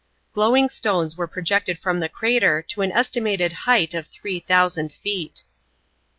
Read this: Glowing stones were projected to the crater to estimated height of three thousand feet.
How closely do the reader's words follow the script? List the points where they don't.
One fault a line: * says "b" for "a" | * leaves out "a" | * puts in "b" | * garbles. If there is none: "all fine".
* says "from" for "to"
* puts in "an"